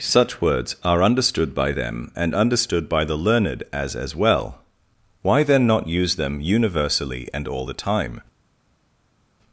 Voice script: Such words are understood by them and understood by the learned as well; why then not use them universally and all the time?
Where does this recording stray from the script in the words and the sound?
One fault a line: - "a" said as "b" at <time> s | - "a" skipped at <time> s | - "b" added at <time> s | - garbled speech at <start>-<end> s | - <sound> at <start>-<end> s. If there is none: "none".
- "as" added at 4.0 s